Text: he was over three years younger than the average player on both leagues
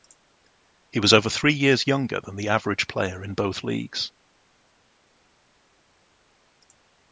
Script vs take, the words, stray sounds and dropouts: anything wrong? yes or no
yes